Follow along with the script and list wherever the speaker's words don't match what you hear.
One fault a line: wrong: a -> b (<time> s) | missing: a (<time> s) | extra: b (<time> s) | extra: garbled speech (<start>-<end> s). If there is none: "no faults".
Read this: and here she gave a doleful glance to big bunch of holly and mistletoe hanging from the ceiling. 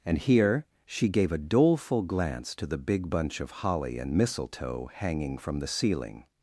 extra: the (2.6 s)